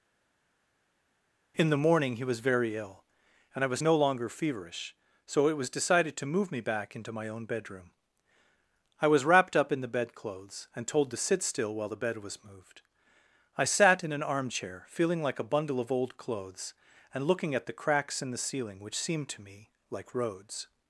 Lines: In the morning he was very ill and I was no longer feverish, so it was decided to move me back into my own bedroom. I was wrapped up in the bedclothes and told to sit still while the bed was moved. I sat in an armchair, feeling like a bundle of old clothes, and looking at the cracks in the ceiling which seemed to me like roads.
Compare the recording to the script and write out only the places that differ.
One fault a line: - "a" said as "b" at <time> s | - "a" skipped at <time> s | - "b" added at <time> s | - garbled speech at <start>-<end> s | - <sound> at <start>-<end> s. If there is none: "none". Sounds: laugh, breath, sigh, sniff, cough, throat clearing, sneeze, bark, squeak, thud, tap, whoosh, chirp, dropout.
none